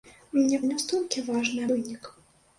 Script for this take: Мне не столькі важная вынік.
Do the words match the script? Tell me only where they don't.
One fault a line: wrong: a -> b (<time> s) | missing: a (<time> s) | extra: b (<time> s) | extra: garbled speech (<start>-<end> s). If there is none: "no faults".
no faults